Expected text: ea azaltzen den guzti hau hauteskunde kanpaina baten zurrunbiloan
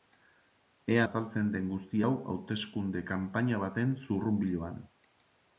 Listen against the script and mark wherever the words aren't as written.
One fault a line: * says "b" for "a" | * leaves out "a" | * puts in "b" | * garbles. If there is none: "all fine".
all fine